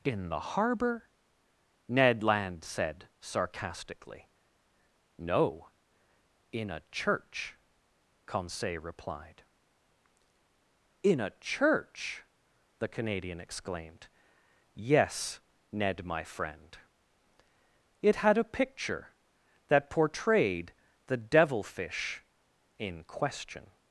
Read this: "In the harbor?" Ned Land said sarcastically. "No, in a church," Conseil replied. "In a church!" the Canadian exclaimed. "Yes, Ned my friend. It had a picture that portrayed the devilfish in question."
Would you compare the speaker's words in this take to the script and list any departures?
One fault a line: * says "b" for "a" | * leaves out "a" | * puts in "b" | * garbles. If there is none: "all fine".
all fine